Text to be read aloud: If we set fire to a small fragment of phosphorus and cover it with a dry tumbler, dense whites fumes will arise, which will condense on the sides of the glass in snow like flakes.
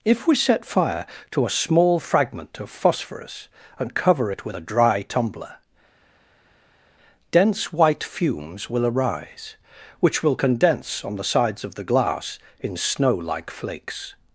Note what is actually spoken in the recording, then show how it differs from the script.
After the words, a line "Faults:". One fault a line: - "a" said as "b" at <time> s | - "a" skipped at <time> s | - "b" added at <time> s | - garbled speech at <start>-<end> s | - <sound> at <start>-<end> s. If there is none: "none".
If we set fire to a small fragment of phosphorus and cover it with a dry tumbler, dense white fumes will arise, which will condense on the sides of the glass in snow like flakes.
Faults:
- "whites" said as "white" at 7.7 s